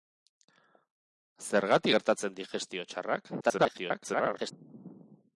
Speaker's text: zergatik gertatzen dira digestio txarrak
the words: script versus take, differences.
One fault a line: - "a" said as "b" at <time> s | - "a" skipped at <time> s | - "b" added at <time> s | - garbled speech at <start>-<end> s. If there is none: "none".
- "dira" skipped at 2.4 s
- garbled speech at 3.4-4.5 s